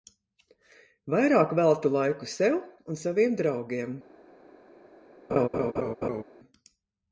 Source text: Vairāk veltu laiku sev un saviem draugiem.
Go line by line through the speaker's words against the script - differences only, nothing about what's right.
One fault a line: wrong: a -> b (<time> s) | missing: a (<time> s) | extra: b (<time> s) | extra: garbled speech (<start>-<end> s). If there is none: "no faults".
no faults